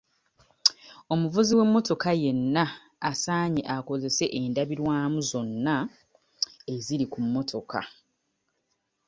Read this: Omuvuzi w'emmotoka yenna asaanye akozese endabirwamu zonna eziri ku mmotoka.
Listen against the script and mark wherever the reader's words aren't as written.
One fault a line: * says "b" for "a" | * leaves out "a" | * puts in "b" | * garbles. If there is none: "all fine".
all fine